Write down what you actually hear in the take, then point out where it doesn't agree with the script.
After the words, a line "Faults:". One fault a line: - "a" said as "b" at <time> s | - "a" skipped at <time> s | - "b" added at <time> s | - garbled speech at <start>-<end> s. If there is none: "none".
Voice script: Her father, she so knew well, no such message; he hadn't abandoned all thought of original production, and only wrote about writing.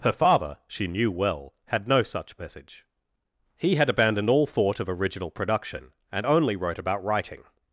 Her father, she knew well, had no such message; he had abandoned all thought of original production, and only wrote about writing.
Faults:
- "so" skipped at 0.9 s
- "had" added at 1.6 s
- "hadn't" said as "had" at 3.8 s